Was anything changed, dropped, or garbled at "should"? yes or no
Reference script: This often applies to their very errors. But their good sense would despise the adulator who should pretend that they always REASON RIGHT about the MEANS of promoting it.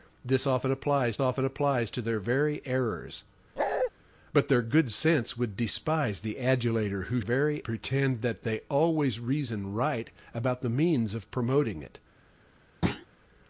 yes